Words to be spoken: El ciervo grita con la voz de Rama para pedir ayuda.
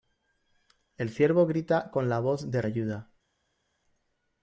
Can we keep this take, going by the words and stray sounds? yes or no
no